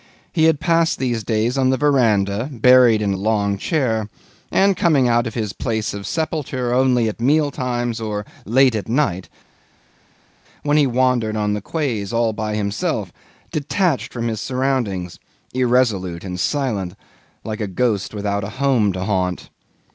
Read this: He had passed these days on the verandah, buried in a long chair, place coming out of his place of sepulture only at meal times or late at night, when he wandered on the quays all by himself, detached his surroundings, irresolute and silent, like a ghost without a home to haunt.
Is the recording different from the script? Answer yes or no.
yes